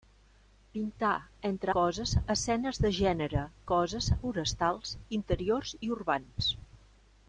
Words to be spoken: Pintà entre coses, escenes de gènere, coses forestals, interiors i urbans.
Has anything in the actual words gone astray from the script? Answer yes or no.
no